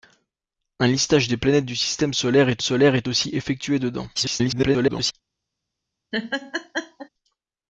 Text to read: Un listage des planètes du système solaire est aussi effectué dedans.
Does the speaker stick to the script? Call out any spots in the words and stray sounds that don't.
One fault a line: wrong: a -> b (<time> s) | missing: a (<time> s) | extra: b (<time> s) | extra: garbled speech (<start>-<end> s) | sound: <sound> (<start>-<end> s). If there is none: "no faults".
extra: solaire est (2.6 s)
extra: garbled speech (4.2-5.1 s)
sound: laugh (6.1-7.1 s)